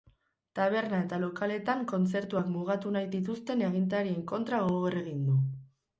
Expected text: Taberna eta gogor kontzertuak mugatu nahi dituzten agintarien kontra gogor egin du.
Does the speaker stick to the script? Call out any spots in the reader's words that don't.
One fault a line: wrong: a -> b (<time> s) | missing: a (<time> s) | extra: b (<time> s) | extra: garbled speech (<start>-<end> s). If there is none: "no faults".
wrong: gogor -> lokaletan (1.2 s)